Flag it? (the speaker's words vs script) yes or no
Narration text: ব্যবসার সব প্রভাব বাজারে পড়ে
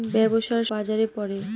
yes